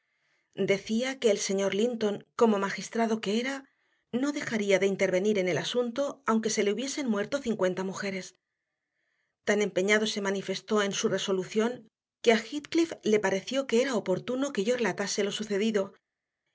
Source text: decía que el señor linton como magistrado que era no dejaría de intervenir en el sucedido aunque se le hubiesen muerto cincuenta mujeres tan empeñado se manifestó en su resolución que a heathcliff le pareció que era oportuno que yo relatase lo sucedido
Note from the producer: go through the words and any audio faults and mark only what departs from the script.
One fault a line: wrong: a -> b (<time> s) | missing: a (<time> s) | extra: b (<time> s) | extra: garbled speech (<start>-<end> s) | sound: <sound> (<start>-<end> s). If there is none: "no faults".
wrong: sucedido -> asunto (5.6 s)